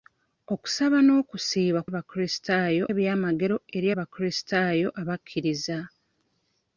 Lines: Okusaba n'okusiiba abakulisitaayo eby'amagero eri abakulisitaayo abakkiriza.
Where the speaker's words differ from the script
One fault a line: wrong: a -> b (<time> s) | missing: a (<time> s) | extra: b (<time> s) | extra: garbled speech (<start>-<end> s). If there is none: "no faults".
no faults